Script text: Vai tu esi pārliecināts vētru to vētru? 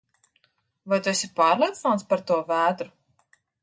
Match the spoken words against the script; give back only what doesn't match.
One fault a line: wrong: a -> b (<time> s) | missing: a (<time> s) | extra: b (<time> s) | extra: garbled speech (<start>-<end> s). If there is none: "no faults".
wrong: vētru -> par (2.1 s)